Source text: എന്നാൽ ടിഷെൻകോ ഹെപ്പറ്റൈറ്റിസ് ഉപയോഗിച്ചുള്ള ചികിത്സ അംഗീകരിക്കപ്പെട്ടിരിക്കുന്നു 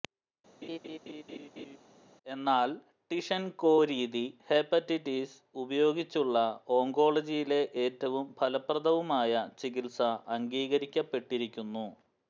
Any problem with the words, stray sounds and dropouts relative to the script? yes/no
yes